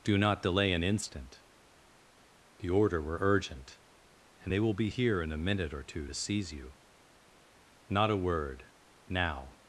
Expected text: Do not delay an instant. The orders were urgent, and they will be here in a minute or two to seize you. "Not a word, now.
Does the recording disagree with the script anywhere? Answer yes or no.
yes